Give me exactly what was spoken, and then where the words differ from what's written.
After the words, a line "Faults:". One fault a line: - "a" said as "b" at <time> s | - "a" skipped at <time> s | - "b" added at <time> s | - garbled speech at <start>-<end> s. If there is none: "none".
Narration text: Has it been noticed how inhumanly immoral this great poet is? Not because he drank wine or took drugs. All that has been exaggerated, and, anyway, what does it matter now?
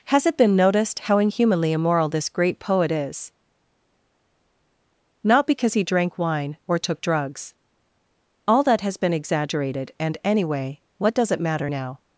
Has it been noticed how inhumanly immoral this great poet is? Not because he drank wine or took drugs. All that has been exaggerated, and, anyway, what does it matter now?
Faults:
none